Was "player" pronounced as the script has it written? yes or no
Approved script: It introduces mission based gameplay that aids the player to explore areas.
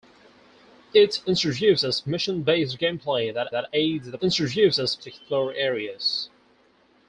no